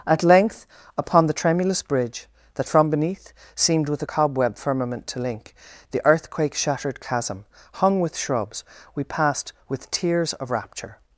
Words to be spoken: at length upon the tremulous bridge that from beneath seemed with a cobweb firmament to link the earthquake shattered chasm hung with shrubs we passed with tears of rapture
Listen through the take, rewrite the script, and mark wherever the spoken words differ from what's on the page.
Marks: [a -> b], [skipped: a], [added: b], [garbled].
at length upon the tremulous bridge that from beneath seemed with a cobweb firmament to link the earthquake shattered chasm hung with shrubs we passed with tears of rapture